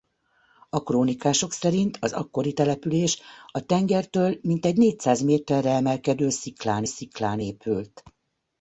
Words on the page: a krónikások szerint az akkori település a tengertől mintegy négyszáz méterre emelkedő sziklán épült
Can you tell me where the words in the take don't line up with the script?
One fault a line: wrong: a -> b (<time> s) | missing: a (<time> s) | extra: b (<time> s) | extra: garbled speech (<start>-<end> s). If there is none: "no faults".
extra: sziklán (6.8 s)